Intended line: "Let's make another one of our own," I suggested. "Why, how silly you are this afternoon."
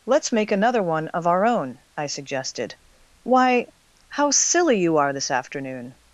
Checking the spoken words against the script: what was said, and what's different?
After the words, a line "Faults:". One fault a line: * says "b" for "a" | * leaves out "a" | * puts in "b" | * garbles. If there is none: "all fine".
"Let's make another one of our own," I suggested. "Why, how silly you are this afternoon."
Faults:
all fine